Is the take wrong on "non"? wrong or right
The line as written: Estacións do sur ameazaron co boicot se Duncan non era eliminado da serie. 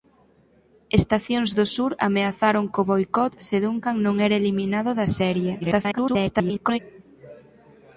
right